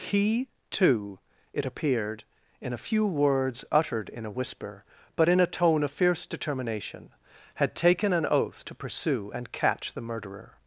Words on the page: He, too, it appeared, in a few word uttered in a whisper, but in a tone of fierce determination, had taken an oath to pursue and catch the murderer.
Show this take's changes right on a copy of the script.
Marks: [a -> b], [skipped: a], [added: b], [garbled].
He, too, it appeared, in a few [word -> words] uttered in a whisper, but in a tone of fierce determination, had taken an oath to pursue and catch the murderer.